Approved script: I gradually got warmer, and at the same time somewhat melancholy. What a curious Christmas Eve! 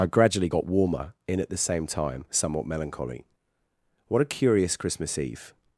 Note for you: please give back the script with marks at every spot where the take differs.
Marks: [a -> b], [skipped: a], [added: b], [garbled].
I gradually got warmer, [and -> in] at the same time somewhat melancholy. What a curious Christmas Eve!